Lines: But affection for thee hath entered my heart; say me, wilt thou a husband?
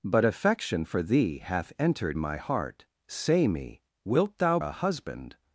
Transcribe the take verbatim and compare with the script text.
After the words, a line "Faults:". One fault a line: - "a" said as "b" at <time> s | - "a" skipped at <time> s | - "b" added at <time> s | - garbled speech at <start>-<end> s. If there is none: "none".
But affection for thee hath entered my heart; say me, wilt thou a husband?
Faults:
none